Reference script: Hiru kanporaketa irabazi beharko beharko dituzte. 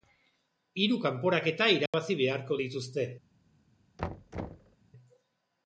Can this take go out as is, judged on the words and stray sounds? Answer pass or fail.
fail